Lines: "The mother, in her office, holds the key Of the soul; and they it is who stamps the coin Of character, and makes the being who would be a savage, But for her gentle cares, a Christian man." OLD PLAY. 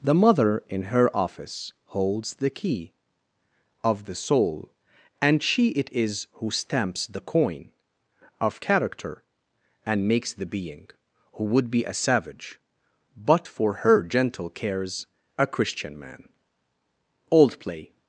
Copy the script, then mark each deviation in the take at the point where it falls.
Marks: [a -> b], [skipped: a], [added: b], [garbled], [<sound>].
"The mother, in her office, holds the key Of the soul; and [they -> she] it is who stamps the coin Of character, and makes the being who would be a savage, But for her gentle cares, a Christian man." OLD PLAY.